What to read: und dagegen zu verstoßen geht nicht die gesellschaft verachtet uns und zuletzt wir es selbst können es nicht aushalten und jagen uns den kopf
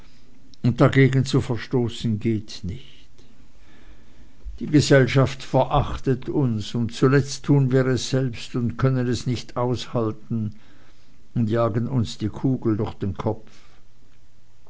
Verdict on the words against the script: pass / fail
fail